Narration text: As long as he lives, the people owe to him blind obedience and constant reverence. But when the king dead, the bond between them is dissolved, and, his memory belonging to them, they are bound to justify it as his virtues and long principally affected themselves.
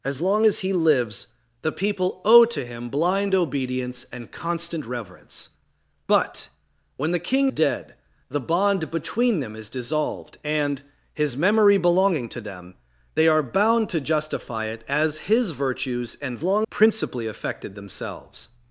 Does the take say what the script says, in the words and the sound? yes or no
yes